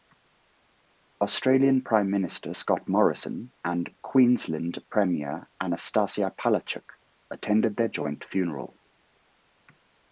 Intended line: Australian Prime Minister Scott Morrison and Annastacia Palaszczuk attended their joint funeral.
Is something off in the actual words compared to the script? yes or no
yes